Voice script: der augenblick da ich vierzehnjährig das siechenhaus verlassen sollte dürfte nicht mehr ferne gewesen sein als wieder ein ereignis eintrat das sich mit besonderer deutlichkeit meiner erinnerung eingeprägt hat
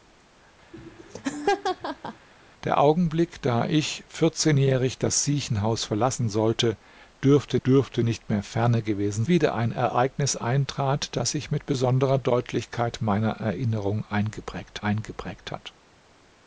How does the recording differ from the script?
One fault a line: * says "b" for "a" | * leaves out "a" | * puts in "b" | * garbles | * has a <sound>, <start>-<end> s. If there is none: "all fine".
* has a laugh, 0.7-2.3 s
* puts in "dürfte"
* leaves out "sein als"
* puts in "eingeprägt"